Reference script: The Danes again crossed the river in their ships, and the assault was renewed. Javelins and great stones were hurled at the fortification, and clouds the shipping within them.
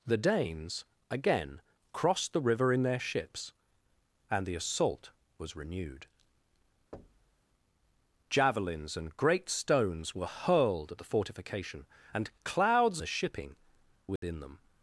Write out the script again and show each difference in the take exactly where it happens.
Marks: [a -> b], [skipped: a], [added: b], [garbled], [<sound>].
The Danes again crossed the river in their ships, and the assault was renewed. [thud] Javelins and great stones were hurled at the fortification, and clouds the shipping within [dropout] them.